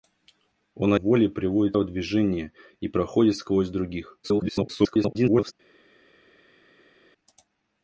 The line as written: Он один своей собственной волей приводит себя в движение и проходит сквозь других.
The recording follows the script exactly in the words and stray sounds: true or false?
false